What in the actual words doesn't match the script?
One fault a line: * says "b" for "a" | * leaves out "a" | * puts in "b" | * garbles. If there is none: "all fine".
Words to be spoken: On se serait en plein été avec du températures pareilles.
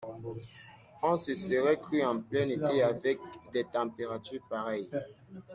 * puts in "cru"
* says "des" for "du"